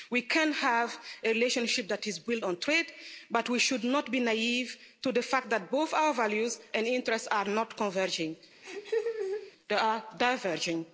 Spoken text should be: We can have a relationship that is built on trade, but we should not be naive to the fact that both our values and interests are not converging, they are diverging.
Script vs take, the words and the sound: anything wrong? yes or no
yes